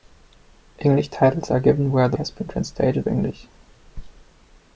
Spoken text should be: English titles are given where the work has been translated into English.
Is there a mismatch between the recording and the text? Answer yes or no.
yes